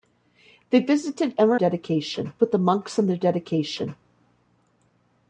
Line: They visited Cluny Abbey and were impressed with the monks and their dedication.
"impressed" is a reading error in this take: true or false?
true